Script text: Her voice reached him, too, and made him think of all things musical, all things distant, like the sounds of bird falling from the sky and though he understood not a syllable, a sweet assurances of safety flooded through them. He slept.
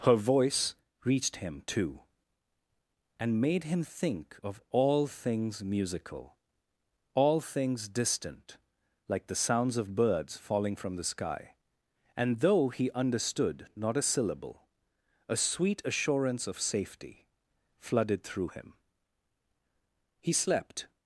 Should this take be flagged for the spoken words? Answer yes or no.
yes